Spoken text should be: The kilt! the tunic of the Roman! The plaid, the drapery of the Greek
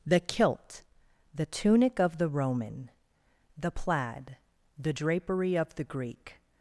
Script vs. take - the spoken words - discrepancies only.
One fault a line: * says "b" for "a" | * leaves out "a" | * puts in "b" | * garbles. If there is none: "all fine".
all fine